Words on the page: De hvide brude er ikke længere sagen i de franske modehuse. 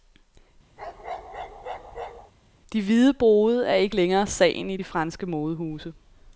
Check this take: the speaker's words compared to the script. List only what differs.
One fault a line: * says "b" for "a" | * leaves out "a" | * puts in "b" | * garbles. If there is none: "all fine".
all fine